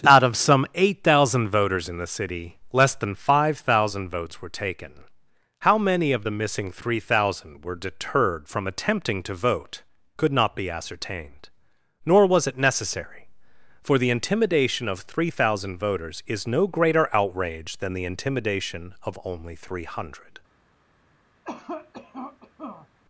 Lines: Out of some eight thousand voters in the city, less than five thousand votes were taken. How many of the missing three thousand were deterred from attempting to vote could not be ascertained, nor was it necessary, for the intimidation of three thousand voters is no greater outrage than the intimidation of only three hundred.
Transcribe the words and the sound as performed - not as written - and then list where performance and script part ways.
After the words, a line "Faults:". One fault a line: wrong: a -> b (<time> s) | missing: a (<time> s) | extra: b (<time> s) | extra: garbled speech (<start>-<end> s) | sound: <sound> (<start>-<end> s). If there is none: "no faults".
Out of some eight thousand voters in the city, less than five thousand votes were taken. How many of the missing three thousand were deterred from attempting to vote could not be ascertained, nor was it necessary, for the intimidation of three thousand voters is no greater outrage than the intimidation of only three hundred.
Faults:
sound: cough (21.4-22.9 s)